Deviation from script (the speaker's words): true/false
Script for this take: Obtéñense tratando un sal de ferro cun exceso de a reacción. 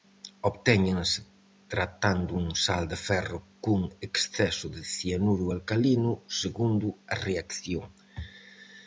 true